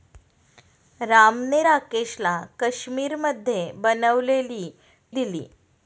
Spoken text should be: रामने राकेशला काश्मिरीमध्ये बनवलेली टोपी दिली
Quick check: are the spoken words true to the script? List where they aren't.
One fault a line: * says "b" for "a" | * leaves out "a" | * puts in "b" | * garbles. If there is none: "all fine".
* leaves out "टोपी"